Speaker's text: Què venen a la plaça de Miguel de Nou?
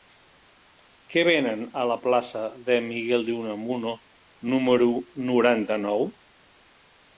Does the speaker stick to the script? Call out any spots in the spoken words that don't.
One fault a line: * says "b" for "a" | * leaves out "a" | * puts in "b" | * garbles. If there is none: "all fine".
* puts in "Unamuno número noranta"